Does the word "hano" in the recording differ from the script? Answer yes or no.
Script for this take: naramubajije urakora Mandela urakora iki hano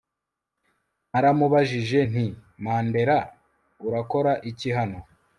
no